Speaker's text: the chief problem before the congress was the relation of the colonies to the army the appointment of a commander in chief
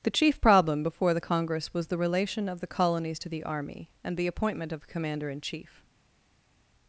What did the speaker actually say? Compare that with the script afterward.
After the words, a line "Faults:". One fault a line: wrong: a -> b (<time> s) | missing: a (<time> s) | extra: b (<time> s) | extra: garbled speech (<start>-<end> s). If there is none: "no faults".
the chief problem before the congress was the relation of the colonies to the army and the appointment of a commander in chief
Faults:
extra: and (4.0 s)